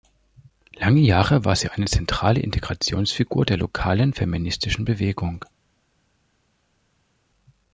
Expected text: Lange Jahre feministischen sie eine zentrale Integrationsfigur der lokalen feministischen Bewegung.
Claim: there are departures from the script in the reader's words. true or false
true